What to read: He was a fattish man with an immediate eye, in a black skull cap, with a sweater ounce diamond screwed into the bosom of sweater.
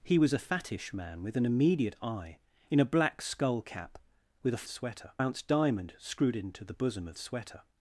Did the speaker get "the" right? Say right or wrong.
right